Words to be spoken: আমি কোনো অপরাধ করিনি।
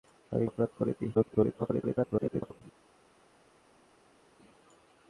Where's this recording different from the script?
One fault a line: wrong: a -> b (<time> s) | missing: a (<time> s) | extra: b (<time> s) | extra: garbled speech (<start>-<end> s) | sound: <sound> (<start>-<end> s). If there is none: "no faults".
missing: কোনো (0.5 s)
extra: garbled speech (1.1-2.6 s)